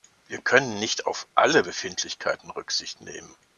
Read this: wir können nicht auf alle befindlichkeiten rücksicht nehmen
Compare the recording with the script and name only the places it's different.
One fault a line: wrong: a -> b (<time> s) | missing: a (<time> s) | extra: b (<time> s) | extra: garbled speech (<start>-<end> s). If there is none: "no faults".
no faults